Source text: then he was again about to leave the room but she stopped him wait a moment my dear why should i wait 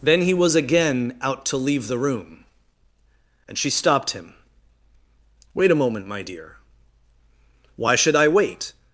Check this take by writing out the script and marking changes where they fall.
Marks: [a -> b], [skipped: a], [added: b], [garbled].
then he was again [about -> out] to leave the room [but -> and] she stopped him wait a moment my dear why should i wait